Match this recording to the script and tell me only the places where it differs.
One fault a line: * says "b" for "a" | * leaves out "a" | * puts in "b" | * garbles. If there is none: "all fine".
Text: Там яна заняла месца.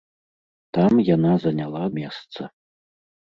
all fine